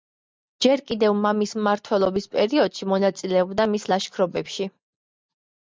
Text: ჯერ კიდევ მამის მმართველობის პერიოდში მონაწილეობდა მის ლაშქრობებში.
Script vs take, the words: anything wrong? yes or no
no